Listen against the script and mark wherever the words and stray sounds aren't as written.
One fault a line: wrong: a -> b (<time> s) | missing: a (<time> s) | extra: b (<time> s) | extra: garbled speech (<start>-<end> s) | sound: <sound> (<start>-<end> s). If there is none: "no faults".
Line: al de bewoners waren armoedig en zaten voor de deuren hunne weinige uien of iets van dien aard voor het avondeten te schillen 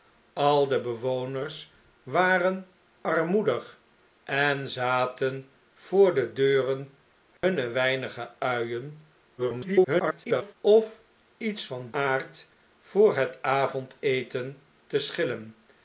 sound: dropout (7.4-7.4 s)
extra: garbled speech (9.4-10.5 s)
missing: dien (11.9 s)